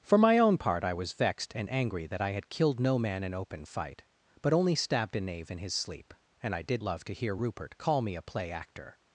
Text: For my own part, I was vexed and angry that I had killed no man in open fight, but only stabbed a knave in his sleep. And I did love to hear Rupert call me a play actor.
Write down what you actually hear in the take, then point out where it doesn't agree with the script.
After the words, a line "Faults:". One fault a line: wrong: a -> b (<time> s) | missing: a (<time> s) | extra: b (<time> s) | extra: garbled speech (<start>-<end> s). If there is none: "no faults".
For my own part, I was vexed and angry that I had killed no man in open fight, but only stabbed a knave in his sleep. And I did love to hear Rupert call me a play actor.
Faults:
no faults